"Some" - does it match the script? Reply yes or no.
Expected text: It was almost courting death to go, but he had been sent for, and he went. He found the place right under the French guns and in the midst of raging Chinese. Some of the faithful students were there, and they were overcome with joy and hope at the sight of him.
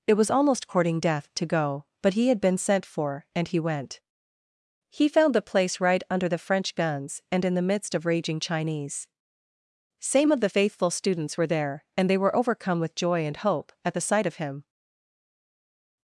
no